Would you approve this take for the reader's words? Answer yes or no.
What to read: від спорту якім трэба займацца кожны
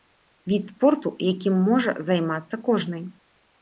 no